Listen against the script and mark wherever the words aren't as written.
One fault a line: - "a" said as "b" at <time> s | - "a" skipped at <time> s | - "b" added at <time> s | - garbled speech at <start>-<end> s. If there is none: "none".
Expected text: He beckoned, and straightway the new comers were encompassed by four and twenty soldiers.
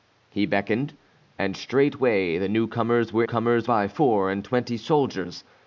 - "encompassed" said as "comers" at 3.2 s